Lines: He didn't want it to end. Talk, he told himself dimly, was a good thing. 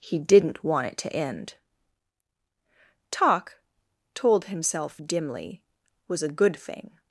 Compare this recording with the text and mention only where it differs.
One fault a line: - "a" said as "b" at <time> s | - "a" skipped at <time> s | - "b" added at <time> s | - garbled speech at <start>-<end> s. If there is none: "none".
- "he" skipped at 3.6 s